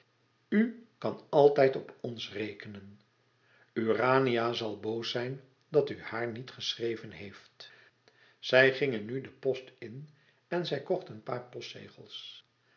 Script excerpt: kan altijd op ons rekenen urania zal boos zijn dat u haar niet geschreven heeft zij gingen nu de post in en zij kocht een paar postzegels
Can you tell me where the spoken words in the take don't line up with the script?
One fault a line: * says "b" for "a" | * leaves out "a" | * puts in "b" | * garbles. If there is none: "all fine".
all fine